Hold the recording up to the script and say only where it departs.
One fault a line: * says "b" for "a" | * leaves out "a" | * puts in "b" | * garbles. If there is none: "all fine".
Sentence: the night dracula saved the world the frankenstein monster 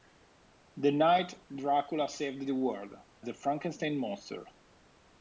all fine